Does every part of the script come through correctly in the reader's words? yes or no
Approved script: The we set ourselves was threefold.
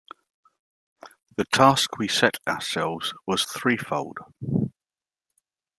no